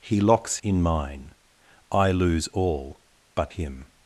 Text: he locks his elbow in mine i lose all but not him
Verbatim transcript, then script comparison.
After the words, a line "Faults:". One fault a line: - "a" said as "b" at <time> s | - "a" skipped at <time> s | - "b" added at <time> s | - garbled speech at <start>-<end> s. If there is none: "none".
he locks in mine i lose all but him
Faults:
- "his elbow" skipped at 0.6 s
- "not" skipped at 3.5 s